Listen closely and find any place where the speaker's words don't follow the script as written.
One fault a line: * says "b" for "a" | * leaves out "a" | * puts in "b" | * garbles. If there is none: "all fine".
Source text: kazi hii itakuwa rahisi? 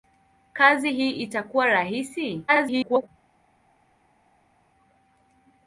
* garbles